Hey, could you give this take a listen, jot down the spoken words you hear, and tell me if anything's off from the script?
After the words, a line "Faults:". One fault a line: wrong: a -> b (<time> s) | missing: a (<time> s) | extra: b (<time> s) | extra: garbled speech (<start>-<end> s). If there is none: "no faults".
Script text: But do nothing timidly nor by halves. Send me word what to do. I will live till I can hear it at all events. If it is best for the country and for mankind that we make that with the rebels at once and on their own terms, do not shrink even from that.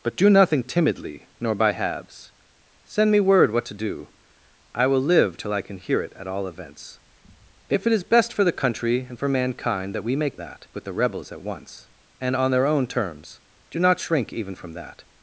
But do nothing timidly nor by halves. Send me word what to do. I will live till I can hear it at all events. If it is best for the country and for mankind that we make that with the rebels at once and on their own terms, do not shrink even from that.
Faults:
no faults